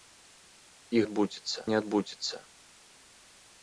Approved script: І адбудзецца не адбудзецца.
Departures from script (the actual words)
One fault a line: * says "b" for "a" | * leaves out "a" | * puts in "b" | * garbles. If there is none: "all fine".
all fine